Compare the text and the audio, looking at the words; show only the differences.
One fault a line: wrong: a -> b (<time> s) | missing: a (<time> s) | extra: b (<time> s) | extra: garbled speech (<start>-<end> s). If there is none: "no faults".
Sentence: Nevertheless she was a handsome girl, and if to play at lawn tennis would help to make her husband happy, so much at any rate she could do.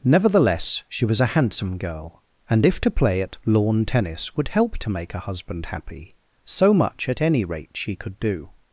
no faults